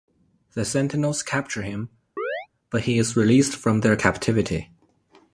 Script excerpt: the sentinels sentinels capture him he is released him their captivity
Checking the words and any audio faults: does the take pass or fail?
fail